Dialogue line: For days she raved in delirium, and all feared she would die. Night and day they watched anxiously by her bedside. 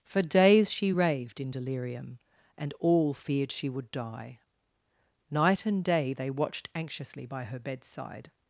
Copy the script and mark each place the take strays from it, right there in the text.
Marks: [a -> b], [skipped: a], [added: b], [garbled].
For days she raved in delirium, and all feared she would die. Night and day they watched anxiously by her bedside.